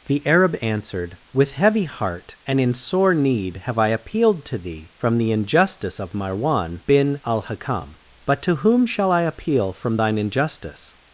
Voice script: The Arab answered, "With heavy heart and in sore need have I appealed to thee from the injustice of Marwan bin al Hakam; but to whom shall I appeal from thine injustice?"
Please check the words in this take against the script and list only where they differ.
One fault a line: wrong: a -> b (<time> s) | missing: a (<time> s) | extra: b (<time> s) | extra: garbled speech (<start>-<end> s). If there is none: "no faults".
no faults